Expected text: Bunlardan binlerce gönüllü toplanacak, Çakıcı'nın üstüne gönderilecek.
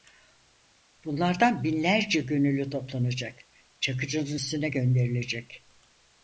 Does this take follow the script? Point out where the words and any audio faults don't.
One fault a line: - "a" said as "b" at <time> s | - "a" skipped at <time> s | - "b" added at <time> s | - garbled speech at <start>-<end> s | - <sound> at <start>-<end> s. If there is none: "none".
none